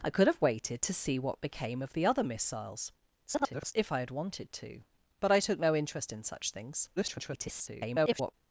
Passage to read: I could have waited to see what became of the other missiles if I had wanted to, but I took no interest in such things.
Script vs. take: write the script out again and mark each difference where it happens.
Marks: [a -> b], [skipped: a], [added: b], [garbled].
I could have waited to see what became of the other missiles [garbled] if I had wanted to, but I took no interest in such things. [garbled]